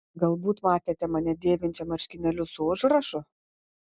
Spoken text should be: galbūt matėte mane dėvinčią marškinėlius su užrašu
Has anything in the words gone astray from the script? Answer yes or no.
no